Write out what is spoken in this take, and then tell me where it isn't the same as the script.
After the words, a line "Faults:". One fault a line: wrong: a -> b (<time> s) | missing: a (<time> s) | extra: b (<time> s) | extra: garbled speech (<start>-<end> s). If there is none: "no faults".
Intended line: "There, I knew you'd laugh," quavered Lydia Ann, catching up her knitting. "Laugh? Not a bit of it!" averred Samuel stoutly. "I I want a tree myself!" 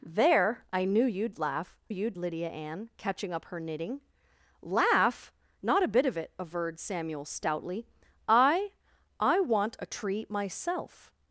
"There, I knew you'd laugh," you'd Lydia Ann, catching up her knitting. "Laugh? Not a bit of it!" averred Samuel stoutly. "I I want a tree myself!"
Faults:
wrong: quavered -> you'd (1.9 s)